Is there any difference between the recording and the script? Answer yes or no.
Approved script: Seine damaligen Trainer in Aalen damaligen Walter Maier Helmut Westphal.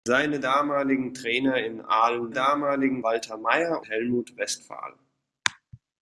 no